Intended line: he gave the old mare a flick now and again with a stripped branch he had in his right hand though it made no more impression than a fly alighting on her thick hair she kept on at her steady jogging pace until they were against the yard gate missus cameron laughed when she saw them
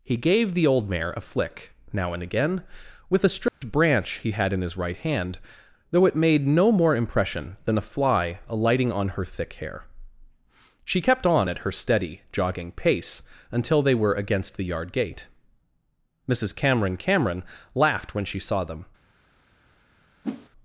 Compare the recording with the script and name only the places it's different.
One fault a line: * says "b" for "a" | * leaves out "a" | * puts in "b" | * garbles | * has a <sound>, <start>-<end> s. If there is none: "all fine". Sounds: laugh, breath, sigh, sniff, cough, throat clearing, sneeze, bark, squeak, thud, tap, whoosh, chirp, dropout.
* has a dropout, 3.5-3.6 s
* puts in "cameron"
* has a whoosh, 20.2-20.5 s